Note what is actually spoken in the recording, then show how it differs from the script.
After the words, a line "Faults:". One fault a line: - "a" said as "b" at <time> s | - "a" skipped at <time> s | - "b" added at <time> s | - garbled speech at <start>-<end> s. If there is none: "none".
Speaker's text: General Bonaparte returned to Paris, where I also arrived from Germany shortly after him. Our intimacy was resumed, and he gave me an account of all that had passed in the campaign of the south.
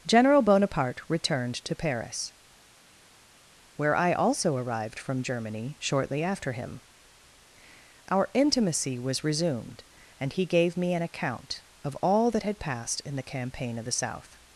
General Bonaparte returned to Paris, where I also arrived from Germany shortly after him. Our intimacy was resumed, and he gave me an account of all that had passed in the campaign of the south.
Faults:
none